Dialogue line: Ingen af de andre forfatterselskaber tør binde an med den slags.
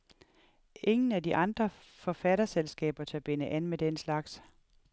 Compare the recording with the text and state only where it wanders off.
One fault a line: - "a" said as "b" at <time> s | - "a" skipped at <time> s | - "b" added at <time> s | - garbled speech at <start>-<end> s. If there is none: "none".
none